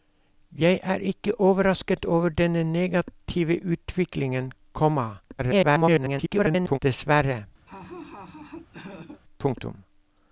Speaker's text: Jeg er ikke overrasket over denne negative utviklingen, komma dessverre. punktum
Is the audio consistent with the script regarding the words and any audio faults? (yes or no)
no